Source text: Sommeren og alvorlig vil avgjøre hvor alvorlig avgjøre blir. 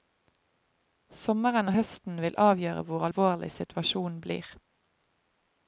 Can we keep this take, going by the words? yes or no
no